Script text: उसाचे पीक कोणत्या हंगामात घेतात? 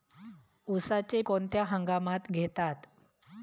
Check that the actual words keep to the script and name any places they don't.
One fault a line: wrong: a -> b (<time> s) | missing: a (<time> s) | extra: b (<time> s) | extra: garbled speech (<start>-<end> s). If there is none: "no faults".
missing: पीक (1.2 s)